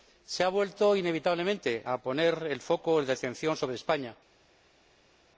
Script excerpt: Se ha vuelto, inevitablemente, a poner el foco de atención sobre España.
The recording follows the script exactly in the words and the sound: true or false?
true